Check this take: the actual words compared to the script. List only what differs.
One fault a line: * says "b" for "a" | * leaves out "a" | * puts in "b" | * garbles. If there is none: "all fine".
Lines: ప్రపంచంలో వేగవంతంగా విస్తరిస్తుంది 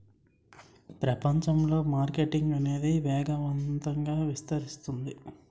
* puts in "మార్కెటింగ్ అనేది"